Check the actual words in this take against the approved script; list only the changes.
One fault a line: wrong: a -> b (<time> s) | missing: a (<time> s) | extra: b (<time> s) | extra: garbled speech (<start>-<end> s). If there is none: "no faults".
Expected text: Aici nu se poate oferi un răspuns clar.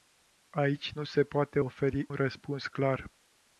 missing: un (2.1 s)